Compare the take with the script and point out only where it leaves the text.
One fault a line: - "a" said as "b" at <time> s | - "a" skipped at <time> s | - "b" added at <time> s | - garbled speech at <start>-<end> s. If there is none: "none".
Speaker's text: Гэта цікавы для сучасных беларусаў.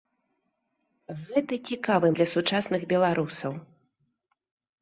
none